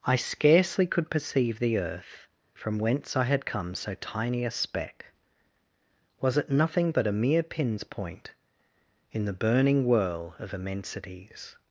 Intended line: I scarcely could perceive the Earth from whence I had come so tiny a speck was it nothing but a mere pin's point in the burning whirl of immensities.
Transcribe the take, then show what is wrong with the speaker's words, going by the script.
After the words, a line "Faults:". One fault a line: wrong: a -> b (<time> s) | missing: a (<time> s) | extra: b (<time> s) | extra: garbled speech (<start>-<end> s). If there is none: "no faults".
I scarcely could perceive the Earth from whence I had come so tiny a speck was it nothing but a mere pin's point in the burning whirl of immensities.
Faults:
no faults